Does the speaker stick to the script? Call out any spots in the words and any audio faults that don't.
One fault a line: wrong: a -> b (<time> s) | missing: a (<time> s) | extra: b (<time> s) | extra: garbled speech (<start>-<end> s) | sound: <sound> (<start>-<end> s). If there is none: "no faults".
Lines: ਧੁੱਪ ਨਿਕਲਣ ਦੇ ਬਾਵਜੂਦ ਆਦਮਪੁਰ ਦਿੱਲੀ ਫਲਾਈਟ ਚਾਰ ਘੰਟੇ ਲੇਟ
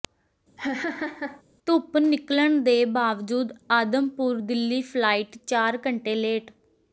sound: laugh (0.6-1.4 s)